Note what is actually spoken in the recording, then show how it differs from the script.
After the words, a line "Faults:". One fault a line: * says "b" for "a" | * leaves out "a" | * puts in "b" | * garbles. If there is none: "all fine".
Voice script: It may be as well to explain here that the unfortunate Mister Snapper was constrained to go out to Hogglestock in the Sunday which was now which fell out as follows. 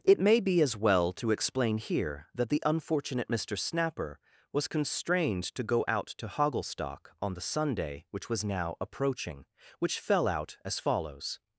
It may be as well to explain here that the unfortunate Mister Snapper was constrained to go out to Hogglestock on the Sunday which was now approaching, which fell out as follows.
Faults:
* says "on" for "in"
* puts in "approaching"